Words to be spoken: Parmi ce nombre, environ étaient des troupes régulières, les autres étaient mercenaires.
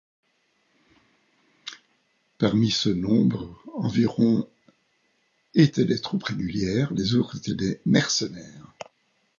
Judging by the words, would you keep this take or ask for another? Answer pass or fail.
fail